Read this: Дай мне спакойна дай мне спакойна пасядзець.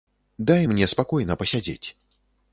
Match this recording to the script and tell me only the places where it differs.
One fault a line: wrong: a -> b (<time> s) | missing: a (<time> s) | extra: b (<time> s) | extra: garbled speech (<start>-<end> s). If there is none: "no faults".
missing: дай мне спакойна (1.4 s)